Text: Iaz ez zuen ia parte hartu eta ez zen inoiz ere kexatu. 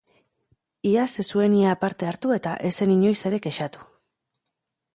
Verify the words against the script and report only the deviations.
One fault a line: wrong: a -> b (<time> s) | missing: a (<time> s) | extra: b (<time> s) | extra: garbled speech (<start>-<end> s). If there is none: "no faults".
no faults